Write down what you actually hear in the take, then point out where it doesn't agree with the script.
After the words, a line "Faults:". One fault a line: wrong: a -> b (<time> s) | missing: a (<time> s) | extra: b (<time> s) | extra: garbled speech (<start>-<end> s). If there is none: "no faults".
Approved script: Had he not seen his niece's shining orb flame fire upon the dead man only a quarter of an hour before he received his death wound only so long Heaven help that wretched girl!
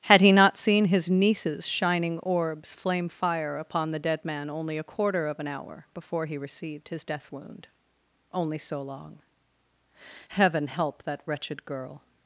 Had he not seen his niece's shining orbs flame fire upon the dead man only a quarter of an hour before he received his death wound only so long Heaven help that wretched girl!
Faults:
wrong: orb -> orbs (2.2 s)